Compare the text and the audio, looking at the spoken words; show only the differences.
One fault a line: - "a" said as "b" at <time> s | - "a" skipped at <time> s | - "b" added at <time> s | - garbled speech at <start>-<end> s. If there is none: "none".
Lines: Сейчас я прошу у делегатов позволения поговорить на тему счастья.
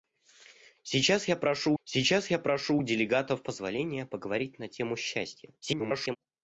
- "сейчас я прошу" added at 1.8 s
- garbled speech at 5.6-6.2 s